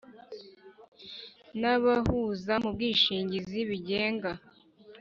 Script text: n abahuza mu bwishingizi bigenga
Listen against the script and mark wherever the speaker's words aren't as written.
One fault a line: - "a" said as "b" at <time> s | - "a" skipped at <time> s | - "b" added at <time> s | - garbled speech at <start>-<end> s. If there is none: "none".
none